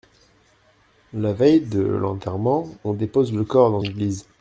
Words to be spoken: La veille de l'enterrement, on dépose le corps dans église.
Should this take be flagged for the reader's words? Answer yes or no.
no